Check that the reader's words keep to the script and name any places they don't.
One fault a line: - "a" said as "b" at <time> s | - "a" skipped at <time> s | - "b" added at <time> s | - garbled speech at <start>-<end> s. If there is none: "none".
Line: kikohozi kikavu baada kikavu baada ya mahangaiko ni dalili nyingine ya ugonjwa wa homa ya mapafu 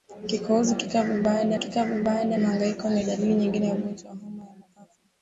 none